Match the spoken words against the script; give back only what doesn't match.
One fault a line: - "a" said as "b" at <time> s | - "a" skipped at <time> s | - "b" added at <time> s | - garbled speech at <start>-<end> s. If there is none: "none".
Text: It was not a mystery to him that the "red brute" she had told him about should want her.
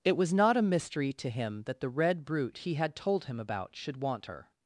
- "she" said as "he" at 2.6 s